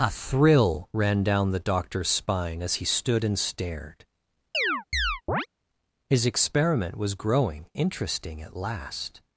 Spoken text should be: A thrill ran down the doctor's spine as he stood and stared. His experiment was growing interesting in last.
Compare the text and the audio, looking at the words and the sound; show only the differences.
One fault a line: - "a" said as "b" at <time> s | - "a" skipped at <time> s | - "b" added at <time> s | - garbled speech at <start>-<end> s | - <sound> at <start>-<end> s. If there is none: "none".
- chirp at 4.5-5.5 s
- "in" said as "at" at 8.4 s